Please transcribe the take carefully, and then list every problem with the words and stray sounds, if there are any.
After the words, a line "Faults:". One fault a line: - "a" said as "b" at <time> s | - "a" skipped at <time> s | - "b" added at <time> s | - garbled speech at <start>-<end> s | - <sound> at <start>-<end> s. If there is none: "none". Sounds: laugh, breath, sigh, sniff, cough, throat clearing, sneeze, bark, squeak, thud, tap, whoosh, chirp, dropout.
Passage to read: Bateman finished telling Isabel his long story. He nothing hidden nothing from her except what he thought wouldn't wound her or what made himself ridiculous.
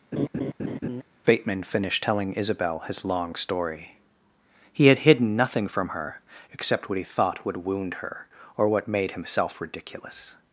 Bateman finished telling Isabel his long story. He had hidden nothing from her except what he thought would wound her or what made himself ridiculous.
Faults:
- laugh at 0.1-1.0 s
- "nothing" said as "had" at 4.9 s
- "wouldn't" said as "would" at 7.5 s